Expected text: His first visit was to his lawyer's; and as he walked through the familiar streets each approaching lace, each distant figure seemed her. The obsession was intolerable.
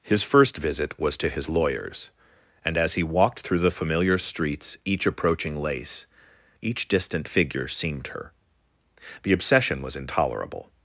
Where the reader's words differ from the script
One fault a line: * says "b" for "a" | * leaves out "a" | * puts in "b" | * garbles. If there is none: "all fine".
all fine